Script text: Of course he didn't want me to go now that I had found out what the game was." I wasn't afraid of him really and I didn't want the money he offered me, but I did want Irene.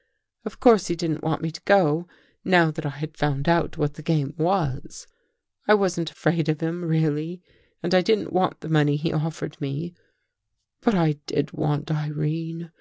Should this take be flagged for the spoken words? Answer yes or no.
no